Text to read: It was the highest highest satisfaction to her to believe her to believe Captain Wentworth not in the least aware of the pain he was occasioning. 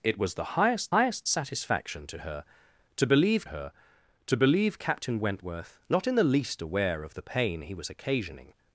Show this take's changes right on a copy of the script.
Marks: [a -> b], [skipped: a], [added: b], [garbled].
It was the highest highest satisfaction to her to believe her to believe Captain Wentworth not in the least aware of the pain he was occasioning.